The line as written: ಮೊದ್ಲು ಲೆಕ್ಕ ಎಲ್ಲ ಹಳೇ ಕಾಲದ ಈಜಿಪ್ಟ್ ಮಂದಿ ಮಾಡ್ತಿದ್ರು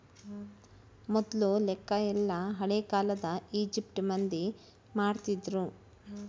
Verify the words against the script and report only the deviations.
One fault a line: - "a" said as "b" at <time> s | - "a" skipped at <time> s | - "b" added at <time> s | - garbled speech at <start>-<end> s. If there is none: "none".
none